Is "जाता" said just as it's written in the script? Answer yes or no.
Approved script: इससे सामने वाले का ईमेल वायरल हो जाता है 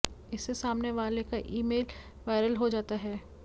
yes